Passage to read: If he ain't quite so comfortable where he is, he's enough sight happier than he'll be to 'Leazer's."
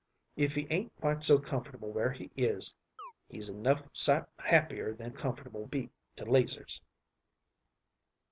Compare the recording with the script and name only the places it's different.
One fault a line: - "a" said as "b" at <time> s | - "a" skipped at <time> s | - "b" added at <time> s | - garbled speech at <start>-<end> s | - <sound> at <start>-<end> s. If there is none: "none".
- chirp at 3.0-3.1 s
- "he'll" said as "comfortable" at 5.1 s